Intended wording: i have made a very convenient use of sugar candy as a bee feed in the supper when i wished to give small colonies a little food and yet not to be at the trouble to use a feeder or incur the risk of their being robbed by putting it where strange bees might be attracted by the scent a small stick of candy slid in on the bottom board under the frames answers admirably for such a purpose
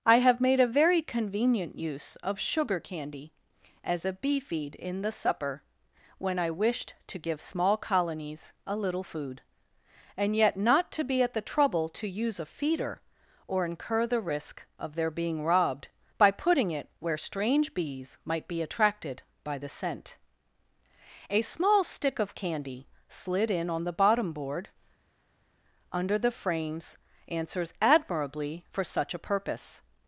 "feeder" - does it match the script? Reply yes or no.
yes